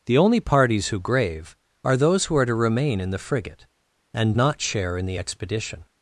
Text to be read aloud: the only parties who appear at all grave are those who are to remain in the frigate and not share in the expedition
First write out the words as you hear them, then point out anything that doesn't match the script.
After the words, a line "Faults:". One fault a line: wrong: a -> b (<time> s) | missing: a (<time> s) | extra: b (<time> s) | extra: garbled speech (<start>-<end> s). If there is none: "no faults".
the only parties who grave are those who are to remain in the frigate and not share in the expedition
Faults:
missing: appear at all (1.0 s)